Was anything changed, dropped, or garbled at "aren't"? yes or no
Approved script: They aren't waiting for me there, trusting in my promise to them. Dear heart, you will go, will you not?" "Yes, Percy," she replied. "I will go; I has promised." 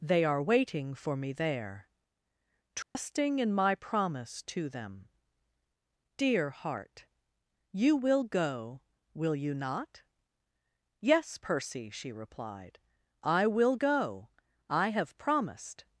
yes